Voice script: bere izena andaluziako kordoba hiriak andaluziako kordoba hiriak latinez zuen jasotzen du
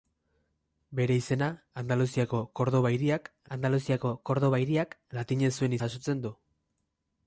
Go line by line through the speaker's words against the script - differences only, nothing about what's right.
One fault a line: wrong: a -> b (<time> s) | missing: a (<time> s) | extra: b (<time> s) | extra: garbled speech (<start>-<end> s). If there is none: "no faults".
no faults